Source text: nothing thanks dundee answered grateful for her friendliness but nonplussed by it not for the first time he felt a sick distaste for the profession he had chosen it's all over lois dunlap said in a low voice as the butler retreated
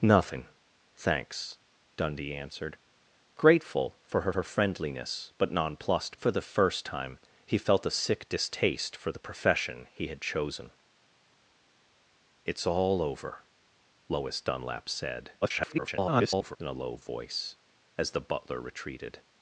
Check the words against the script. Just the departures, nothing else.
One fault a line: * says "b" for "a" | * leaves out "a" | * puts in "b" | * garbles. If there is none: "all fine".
* puts in "her"
* leaves out "by it not"
* garbles